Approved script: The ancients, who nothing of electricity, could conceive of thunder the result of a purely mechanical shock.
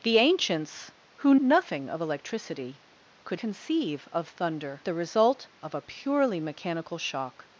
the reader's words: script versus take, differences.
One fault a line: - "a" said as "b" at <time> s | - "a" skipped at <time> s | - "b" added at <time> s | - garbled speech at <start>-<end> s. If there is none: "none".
none